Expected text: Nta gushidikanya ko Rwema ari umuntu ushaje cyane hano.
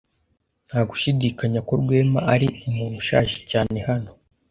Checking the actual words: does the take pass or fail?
pass